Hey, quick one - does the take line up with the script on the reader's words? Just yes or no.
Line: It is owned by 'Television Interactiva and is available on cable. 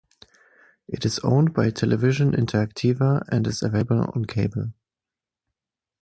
yes